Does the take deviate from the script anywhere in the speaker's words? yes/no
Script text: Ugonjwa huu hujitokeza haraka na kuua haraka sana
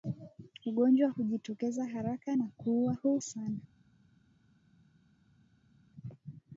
yes